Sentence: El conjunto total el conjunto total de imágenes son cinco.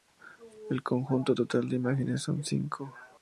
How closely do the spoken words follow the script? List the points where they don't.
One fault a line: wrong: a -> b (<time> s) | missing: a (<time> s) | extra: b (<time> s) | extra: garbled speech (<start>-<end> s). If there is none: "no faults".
missing: el conjunto total (1.7 s)